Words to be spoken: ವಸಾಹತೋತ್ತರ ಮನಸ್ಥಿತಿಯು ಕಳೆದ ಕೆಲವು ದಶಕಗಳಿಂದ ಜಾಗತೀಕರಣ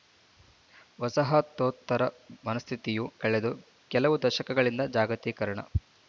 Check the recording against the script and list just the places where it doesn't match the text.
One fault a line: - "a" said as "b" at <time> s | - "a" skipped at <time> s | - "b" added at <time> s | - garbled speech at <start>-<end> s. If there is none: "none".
none